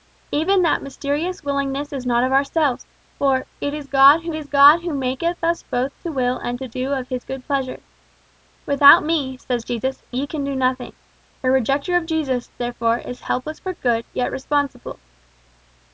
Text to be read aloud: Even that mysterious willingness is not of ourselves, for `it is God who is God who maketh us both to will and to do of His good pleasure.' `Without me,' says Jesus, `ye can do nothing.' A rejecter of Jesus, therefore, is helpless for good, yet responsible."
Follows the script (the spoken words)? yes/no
yes